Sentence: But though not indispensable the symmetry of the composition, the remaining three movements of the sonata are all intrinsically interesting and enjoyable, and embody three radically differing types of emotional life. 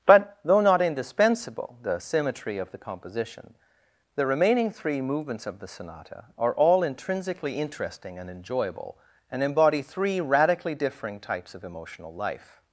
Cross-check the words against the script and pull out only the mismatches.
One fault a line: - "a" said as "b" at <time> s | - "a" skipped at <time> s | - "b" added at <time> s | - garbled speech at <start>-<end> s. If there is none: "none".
none